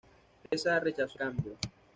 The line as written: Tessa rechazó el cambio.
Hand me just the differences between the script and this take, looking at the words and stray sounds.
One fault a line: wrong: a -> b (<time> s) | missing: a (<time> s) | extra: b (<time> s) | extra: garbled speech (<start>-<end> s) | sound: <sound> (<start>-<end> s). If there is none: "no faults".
sound: dropout (0.5-0.5 s)
missing: el (1.2 s)